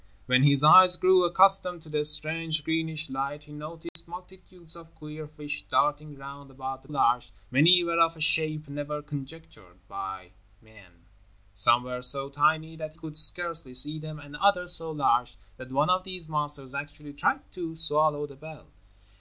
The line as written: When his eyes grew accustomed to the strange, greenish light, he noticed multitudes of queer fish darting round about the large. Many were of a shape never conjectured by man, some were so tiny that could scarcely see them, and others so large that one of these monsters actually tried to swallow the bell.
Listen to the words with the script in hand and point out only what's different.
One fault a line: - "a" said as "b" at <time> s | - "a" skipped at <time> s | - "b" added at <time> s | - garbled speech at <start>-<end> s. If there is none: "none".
none